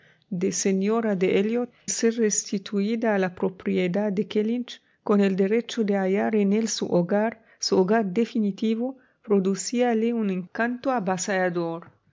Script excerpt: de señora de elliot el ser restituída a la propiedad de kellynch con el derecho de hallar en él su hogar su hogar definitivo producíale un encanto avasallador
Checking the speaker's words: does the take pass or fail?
fail